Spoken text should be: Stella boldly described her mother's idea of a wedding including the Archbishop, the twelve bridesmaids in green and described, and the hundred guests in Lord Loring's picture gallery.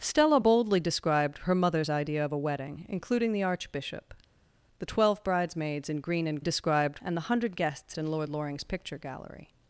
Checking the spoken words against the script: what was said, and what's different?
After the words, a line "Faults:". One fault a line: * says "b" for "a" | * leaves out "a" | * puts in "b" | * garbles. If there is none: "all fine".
Stella boldly described her mother's idea of a wedding including the Archbishop, the twelve bridesmaids in green and described, and the hundred guests in Lord Loring's picture gallery.
Faults:
all fine